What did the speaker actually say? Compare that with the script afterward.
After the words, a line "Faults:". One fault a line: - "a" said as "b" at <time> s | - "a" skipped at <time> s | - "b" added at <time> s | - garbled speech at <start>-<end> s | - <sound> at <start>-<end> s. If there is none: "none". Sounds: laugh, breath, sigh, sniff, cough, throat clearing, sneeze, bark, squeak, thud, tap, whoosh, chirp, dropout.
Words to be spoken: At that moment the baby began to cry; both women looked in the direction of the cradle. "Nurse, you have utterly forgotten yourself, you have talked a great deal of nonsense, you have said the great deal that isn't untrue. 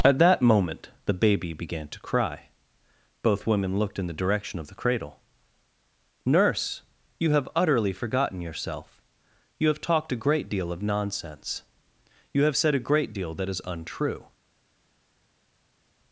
At that moment the baby began to cry; both women looked in the direction of the cradle. "Nurse, you have utterly forgotten yourself, you have talked a great deal of nonsense, you have said a great deal that is untrue.
Faults:
- "the" said as "a" at 12.8 s
- "isn't" said as "is" at 13.5 s